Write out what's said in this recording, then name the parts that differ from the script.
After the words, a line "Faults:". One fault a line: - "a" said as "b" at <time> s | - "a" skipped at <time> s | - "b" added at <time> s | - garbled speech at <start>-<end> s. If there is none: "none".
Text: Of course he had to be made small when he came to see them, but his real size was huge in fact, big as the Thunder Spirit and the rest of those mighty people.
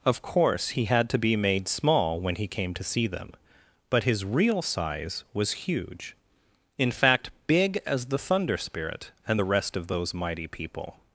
Of course he had to be made small when he came to see them, but his real size was huge in fact, big as the Thunder Spirit and the rest of those mighty people.
Faults:
none